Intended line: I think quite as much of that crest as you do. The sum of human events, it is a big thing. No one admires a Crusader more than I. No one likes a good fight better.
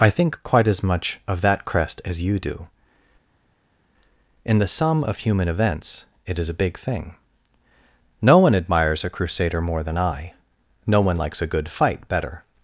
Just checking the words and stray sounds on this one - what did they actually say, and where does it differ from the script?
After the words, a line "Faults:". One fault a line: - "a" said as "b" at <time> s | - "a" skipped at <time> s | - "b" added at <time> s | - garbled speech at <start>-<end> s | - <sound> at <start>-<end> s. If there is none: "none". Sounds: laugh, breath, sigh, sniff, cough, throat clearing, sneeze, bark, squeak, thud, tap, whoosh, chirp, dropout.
I think quite as much of that crest as you do. In the sum of human events, it is a big thing. No one admires a Crusader more than I. No one likes a good fight better.
Faults:
- "In" added at 4.4 s